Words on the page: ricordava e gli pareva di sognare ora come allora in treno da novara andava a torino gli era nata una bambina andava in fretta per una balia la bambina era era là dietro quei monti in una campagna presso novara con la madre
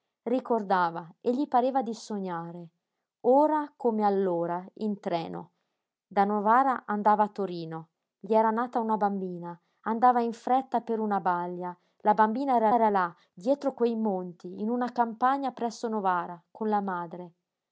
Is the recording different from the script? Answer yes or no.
no